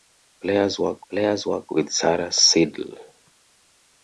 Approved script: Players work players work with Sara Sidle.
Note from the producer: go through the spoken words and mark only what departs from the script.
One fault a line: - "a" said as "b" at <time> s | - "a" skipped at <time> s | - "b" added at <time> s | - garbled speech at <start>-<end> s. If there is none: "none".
none